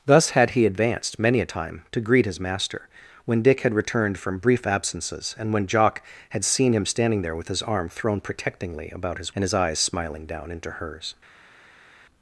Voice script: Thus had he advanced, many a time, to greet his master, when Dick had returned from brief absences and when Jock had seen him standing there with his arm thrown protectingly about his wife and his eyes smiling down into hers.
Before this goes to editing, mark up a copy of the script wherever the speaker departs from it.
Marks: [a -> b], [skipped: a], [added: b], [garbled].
Thus had he advanced, many a time, to greet his master, when Dick had returned from brief absences and when Jock had seen him standing there with his arm thrown protectingly about his [skipped: wife] and his eyes smiling down into hers.